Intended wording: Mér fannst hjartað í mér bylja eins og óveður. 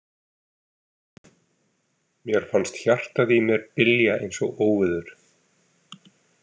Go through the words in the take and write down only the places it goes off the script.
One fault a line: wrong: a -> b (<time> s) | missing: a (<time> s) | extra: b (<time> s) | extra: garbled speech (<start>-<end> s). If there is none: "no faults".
no faults